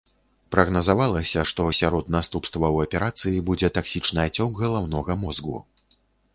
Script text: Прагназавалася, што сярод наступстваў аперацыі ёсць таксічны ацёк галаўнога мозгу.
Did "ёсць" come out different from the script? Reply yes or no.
yes